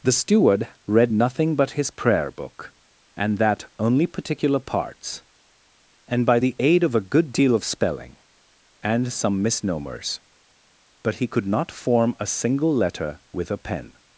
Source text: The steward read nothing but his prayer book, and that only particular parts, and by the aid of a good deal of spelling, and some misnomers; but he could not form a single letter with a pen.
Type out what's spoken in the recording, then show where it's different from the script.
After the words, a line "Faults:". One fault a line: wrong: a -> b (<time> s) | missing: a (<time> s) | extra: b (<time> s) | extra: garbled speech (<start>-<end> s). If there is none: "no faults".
The steward read nothing but his prayer book, and that only particular parts, and by the aid of a good deal of spelling, and some misnomers; but he could not form a single letter with a pen.
Faults:
no faults